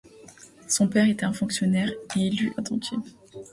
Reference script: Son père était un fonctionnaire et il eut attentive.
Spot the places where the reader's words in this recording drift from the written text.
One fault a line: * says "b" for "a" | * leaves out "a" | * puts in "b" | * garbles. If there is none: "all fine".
all fine